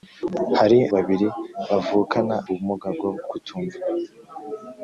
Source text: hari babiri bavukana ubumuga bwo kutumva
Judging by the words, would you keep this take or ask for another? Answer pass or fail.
pass